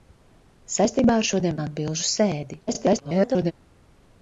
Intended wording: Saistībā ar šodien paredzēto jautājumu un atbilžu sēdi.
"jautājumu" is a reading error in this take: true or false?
true